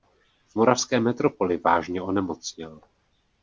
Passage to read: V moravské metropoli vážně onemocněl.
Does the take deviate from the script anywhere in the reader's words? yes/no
no